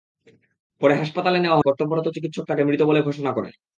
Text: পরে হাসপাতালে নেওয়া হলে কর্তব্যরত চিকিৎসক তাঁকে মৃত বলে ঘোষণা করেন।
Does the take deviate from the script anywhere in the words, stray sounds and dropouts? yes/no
yes